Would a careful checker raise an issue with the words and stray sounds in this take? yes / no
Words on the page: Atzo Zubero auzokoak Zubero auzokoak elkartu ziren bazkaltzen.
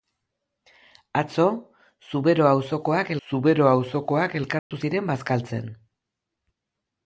yes